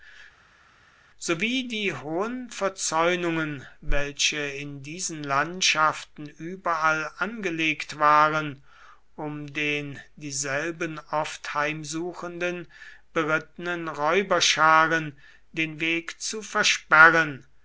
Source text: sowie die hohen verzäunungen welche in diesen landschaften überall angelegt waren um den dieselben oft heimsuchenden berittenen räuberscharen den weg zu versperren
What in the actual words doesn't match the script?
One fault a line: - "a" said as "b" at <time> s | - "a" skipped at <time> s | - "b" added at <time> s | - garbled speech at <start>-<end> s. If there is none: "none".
none